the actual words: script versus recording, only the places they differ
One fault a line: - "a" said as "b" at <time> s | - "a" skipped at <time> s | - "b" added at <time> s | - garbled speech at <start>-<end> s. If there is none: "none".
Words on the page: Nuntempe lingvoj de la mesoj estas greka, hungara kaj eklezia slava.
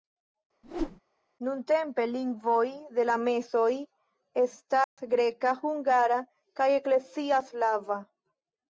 none